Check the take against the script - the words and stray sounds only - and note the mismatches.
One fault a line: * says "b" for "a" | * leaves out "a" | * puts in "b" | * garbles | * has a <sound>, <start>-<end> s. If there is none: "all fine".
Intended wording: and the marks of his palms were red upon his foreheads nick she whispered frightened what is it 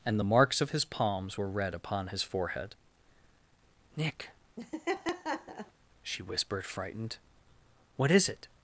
* says "forehead" for "foreheads"
* has a laugh, 4.6-5.7 s